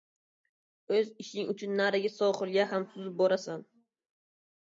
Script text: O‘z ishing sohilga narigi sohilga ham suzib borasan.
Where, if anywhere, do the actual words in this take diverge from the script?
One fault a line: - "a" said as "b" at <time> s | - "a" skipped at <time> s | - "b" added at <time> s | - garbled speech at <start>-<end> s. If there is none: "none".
- "sohilga" said as "uchun" at 1.5 s